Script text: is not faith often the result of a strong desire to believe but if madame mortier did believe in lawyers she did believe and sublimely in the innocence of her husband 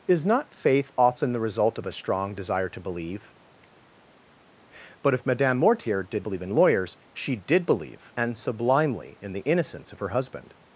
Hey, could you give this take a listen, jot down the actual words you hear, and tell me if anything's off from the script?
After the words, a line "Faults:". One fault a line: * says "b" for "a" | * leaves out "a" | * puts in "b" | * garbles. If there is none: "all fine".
is not faith often the result of a strong desire to believe but if madame mortier did believe in lawyers she did believe and sublimely in the innocence of her husband
Faults:
all fine